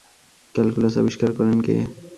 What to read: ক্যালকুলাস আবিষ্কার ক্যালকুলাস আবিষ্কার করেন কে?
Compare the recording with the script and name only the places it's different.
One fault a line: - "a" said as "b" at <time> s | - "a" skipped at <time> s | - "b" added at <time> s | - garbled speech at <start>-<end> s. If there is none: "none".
- "ক্যালকুলাস আবিষ্কার" skipped at 1.3 s